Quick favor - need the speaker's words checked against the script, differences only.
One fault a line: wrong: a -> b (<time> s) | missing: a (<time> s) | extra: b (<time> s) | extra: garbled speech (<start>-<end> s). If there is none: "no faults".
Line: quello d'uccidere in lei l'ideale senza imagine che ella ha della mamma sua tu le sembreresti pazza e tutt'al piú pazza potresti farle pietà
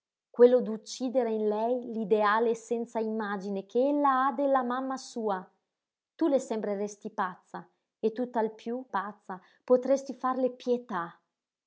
no faults